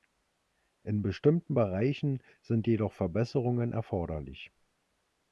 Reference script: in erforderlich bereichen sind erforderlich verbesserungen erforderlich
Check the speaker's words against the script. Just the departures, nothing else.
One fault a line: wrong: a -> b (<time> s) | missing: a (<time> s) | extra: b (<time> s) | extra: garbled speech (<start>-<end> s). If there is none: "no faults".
wrong: erforderlich -> bestimmten (1.0 s)
wrong: erforderlich -> jedoch (2.7 s)